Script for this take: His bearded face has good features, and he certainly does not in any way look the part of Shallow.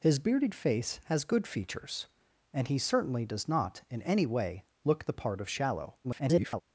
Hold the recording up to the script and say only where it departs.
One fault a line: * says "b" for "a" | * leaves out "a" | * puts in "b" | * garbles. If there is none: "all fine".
* garbles